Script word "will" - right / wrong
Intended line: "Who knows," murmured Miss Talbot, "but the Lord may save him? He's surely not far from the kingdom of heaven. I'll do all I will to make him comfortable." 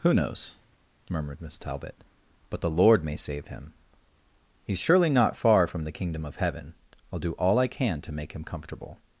wrong